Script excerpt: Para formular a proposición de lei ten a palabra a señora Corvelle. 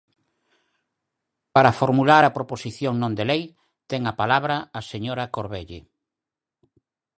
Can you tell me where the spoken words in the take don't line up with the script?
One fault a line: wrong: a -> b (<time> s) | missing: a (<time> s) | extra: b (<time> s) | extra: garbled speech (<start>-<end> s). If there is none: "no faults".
extra: non (3.0 s)